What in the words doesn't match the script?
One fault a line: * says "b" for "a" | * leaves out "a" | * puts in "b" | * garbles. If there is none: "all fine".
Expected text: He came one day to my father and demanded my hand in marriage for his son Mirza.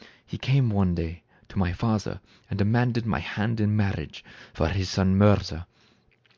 all fine